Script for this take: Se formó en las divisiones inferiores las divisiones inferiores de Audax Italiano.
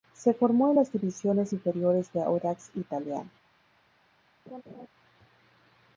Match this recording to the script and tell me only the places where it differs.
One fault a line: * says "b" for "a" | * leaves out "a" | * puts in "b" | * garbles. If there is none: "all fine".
* leaves out "las divisiones inferiores"